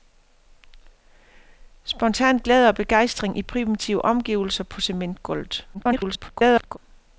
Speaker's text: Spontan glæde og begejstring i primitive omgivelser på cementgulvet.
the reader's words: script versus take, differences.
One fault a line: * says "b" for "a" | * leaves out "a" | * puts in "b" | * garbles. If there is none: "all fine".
* garbles